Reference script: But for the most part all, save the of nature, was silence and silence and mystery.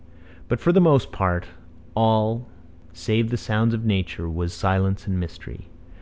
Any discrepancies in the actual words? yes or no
yes